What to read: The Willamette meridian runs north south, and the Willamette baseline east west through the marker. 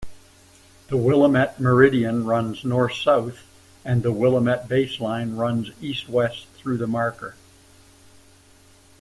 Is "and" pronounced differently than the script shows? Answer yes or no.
no